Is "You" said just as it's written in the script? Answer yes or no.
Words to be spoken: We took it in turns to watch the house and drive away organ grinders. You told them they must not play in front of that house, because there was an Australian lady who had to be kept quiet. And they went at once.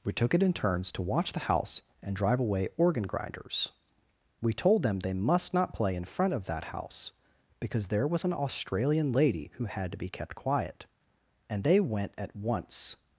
no